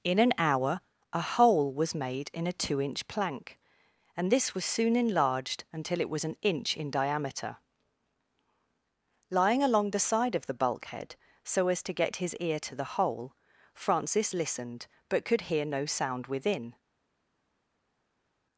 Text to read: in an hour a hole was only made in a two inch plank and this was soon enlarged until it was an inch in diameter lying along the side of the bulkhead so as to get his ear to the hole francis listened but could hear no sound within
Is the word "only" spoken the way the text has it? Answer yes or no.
no